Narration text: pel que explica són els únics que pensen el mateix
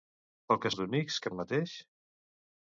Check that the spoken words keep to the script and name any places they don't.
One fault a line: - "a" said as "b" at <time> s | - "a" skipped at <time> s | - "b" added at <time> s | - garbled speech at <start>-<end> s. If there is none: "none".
- "explica són" skipped at 0.7 s
- "pensen" skipped at 1.3 s